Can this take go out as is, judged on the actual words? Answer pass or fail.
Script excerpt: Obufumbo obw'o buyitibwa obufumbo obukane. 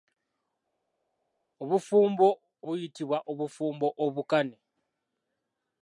fail